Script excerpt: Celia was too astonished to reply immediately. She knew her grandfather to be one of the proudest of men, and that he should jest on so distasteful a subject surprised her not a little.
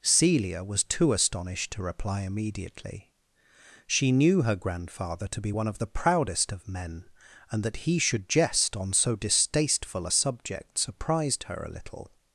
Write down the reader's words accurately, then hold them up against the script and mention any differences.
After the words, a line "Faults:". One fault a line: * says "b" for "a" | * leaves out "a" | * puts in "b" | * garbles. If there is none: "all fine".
Celia was too astonished to reply immediately. She knew her grandfather to be one of the proudest of men, and that he should jest on so distasteful a subject surprised her a little.
Faults:
* leaves out "not"